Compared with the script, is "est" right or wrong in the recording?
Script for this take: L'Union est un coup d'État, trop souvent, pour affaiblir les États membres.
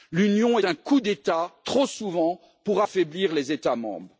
wrong